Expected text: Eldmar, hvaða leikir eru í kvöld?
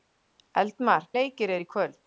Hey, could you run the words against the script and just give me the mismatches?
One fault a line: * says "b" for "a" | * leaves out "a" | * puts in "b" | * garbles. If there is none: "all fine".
* leaves out "hvaða"